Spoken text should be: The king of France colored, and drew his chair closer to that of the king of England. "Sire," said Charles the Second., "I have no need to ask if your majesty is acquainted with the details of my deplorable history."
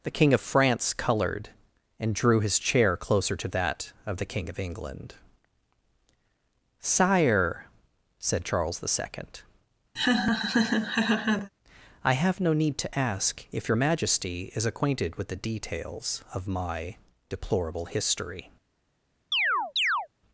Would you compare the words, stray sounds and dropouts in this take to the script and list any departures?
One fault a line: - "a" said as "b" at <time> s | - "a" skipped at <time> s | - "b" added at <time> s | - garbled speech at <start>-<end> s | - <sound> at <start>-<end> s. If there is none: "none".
- laugh at 10.0-11.5 s
- chirp at 19.3-20.1 s